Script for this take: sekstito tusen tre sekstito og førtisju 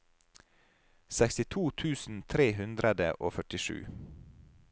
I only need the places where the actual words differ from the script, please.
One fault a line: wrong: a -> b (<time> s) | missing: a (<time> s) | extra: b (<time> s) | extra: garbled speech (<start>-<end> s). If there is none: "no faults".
wrong: sekstito -> hundre (2.6 s)